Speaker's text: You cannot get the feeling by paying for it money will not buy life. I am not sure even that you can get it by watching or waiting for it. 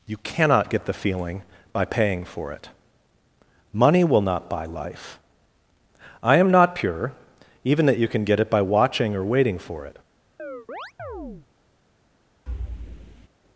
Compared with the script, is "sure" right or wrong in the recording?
wrong